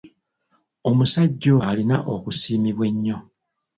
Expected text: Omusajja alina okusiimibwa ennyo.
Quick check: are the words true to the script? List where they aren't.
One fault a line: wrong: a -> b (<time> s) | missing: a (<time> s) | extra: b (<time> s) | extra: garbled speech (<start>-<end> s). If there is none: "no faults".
no faults